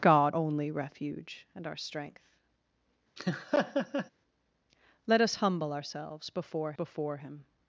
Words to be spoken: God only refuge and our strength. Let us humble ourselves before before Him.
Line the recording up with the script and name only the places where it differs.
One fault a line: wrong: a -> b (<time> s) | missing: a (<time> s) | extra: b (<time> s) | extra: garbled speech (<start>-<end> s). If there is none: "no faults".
no faults